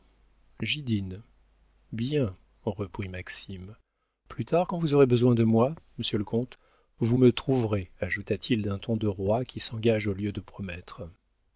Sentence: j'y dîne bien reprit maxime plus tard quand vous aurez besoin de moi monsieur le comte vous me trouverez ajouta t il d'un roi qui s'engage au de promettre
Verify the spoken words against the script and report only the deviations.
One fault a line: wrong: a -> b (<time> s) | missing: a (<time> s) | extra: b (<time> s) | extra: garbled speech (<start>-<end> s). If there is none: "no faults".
extra: ton de (8.8 s)
extra: lieu (10.1 s)